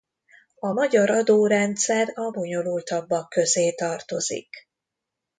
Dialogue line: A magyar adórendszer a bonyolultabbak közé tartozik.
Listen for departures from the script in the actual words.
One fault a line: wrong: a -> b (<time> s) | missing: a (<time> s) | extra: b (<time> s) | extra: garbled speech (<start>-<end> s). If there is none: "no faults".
no faults